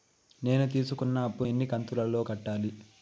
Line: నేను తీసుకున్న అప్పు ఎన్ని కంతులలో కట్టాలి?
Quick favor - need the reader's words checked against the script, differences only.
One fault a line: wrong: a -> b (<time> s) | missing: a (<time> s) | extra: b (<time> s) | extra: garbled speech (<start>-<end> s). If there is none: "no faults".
no faults